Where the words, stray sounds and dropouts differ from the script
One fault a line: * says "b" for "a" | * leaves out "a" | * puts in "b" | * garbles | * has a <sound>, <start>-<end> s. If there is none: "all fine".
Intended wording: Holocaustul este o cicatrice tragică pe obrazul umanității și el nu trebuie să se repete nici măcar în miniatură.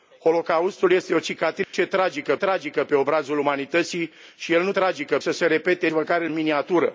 * has a dropout, 1.6-1.7 s
* puts in "tragică"
* says "tragică" for "trebuie"
* leaves out "nici"